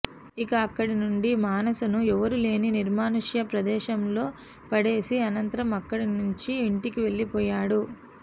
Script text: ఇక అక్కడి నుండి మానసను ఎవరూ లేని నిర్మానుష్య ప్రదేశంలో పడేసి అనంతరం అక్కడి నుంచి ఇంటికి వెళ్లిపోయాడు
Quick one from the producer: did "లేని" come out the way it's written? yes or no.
yes